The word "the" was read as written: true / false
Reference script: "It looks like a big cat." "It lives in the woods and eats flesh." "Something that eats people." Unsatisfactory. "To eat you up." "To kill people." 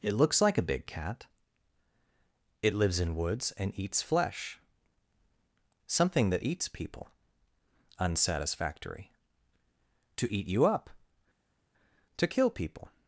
false